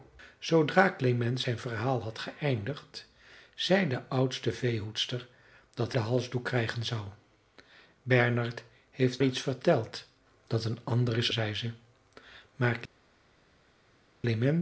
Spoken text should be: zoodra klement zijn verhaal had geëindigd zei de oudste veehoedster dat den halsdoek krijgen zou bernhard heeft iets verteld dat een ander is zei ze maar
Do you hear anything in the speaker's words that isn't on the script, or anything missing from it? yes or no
no